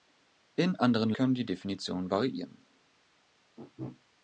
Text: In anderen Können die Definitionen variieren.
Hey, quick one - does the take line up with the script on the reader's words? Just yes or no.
yes